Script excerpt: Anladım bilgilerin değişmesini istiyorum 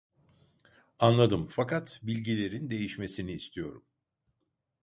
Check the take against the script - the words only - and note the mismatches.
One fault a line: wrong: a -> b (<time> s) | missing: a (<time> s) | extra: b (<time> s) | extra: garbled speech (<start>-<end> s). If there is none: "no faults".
extra: fakat (1.5 s)